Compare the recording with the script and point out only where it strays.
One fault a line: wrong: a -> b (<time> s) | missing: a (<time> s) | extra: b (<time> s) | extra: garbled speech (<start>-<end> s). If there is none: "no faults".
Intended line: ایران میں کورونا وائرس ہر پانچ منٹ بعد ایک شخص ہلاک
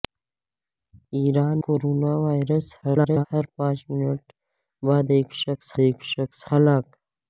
missing: میں (1.6 s)
extra: garbled speech (2.8-3.3 s)
extra: ایک شخص (5.8 s)